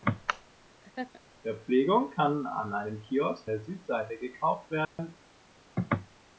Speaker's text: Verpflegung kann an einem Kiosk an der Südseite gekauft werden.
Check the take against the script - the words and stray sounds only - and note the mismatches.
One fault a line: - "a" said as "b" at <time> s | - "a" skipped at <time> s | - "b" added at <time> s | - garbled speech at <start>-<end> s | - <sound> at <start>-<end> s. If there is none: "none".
- laugh at 0.8-1.2 s
- "an" skipped at 3.5 s
- dropout at 4.8-5.0 s